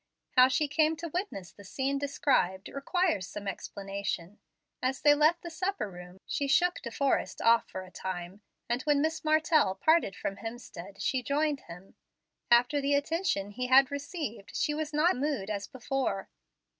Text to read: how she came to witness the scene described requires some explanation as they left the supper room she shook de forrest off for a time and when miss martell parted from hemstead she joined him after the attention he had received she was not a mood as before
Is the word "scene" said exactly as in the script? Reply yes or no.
yes